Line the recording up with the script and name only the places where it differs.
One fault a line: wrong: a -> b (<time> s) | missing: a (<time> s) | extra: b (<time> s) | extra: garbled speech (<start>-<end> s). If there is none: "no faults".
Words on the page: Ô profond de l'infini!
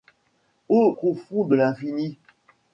no faults